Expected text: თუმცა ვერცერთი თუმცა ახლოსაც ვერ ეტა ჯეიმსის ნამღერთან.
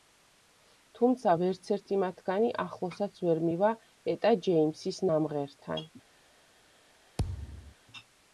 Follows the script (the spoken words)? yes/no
no